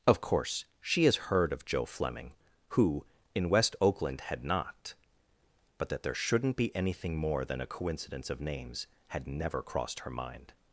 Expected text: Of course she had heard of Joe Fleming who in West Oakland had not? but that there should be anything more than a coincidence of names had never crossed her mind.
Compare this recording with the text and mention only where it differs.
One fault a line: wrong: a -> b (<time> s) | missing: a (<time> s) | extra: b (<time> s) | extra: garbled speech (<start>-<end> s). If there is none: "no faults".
wrong: had -> has (1.1 s)
wrong: should -> shouldn't (6.1 s)